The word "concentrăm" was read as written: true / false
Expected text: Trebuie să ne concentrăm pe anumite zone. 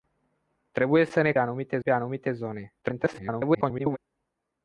false